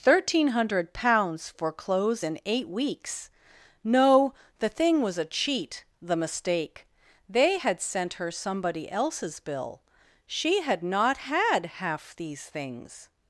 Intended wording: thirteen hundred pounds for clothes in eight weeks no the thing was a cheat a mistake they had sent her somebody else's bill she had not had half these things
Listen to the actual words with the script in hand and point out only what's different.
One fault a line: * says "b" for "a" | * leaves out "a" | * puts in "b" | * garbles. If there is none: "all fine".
* says "the" for "a"